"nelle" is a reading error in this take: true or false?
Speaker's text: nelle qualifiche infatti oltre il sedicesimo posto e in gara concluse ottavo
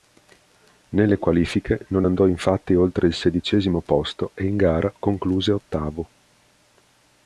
false